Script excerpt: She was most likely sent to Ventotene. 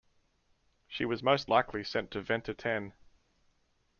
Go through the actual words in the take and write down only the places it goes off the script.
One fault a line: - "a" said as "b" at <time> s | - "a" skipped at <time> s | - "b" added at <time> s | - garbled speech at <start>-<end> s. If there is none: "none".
none